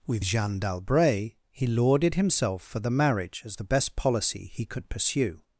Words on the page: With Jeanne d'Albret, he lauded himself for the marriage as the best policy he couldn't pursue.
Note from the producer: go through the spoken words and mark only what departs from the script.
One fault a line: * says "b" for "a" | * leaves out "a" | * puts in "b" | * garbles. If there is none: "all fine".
* says "could" for "couldn't"